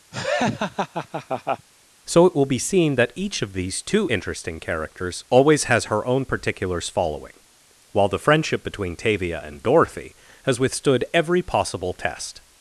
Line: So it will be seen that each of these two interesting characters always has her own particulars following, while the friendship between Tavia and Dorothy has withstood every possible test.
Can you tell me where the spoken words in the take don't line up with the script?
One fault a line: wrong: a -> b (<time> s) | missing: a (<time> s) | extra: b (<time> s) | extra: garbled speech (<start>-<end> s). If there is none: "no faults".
no faults